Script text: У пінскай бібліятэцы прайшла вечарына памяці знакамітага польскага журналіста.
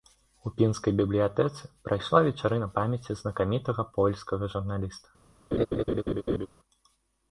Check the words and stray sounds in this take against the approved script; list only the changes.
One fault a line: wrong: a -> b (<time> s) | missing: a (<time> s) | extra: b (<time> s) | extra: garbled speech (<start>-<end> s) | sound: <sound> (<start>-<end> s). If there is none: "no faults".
sound: laugh (5.5-6.5 s)